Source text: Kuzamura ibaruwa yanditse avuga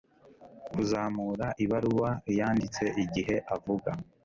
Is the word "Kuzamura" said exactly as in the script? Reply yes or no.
yes